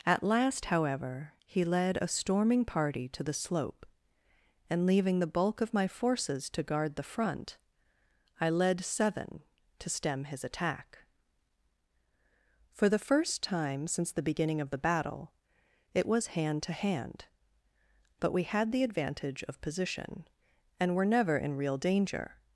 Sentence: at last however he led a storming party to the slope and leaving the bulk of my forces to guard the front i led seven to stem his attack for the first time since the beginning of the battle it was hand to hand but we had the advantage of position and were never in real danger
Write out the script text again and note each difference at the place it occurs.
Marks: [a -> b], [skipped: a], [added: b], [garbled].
at last however he led a storming party to the slope and leaving the bulk of my forces to guard the front i led seven to stem his attack for the first time since the beginning of the battle it was hand to hand but we had the advantage of position and were never in real danger